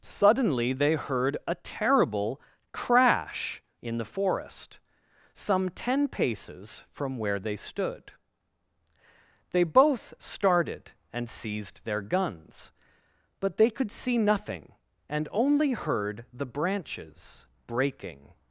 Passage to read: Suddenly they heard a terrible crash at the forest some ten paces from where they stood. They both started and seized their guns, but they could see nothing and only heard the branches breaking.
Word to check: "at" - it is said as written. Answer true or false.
false